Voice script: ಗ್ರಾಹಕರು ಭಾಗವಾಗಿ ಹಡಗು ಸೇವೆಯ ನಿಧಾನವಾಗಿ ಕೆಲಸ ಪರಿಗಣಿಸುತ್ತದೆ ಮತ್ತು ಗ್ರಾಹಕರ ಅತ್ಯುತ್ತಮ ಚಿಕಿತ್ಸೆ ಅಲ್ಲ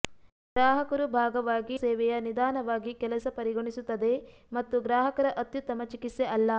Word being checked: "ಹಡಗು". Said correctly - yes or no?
no